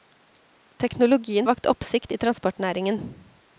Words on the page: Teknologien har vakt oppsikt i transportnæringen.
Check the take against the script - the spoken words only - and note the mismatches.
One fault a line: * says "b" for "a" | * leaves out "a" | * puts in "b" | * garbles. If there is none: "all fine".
* leaves out "har"